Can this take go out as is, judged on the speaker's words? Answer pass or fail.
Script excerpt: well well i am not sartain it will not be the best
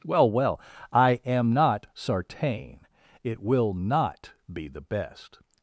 pass